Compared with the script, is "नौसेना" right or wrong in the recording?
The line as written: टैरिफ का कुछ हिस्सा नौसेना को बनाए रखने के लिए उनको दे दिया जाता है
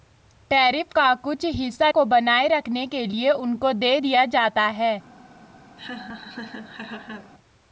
wrong